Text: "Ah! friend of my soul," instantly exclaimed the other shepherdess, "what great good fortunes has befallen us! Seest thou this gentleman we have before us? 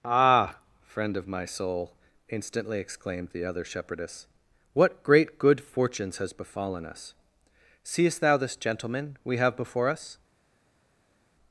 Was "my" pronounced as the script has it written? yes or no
yes